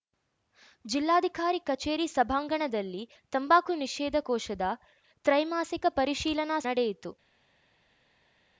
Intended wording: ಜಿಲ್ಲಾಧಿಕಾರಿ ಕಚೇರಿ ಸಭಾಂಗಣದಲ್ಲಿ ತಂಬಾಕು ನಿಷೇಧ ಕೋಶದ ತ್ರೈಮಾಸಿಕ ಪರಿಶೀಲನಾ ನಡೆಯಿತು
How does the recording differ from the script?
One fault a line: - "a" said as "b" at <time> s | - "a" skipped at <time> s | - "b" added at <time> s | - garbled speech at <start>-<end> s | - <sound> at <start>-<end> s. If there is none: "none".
none